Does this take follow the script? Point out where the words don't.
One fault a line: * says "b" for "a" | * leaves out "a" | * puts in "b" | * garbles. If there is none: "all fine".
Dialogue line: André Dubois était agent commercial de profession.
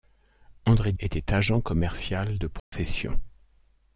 * leaves out "Dubois"